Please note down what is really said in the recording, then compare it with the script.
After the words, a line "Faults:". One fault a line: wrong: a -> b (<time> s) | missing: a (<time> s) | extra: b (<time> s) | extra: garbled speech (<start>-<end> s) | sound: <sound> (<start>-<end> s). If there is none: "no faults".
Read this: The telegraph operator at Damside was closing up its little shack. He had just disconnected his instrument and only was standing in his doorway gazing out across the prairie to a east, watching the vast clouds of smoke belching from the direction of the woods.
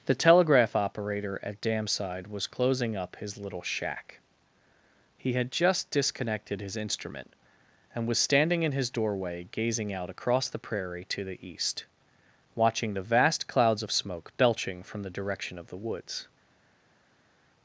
The telegraph operator at Damside was closing up his little shack. He had just disconnected his instrument and was standing in his doorway gazing out across the prairie to the east, watching the vast clouds of smoke belching from the direction of the woods.
Faults:
wrong: its -> his (3.2 s)
missing: only (8.1 s)
wrong: a -> the (11.2 s)